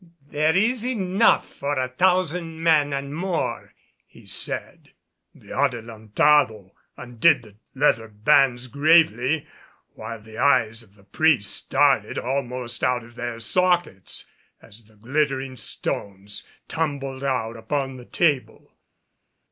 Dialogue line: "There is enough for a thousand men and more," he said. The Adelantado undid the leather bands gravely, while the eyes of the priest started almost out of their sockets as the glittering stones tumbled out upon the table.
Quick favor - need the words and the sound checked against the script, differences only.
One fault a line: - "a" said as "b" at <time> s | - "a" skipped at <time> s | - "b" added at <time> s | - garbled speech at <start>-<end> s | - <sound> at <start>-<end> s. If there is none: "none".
none